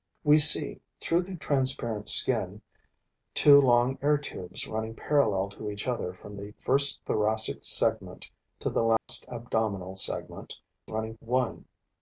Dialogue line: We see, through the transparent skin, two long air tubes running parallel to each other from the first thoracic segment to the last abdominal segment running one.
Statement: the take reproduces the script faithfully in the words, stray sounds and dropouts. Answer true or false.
false